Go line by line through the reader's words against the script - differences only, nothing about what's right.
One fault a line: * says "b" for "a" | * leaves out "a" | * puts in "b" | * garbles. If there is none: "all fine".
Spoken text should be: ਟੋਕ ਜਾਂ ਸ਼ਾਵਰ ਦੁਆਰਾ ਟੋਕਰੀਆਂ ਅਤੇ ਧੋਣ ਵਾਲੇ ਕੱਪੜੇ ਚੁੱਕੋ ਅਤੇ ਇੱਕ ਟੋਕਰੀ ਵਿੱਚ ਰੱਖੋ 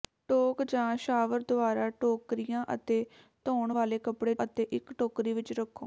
* leaves out "ਚੁੱਕੋ"